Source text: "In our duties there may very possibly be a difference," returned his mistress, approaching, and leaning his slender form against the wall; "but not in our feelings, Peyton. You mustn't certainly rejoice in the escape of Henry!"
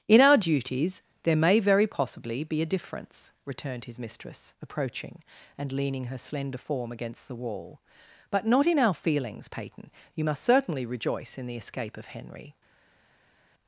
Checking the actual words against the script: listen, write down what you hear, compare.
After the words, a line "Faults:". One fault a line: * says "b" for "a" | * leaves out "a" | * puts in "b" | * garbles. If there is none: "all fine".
"In our duties there may very possibly be a difference," returned his mistress, approaching, and leaning her slender form against the wall; "but not in our feelings, Peyton. You must certainly rejoice in the escape of Henry!"
Faults:
* says "her" for "his"
* says "must" for "mustn't"